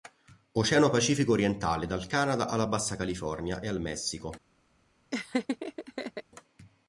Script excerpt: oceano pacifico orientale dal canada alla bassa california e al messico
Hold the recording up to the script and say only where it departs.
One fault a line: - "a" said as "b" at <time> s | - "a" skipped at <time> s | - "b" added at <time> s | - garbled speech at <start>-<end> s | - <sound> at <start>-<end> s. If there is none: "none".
- laugh at 5.1-6.2 s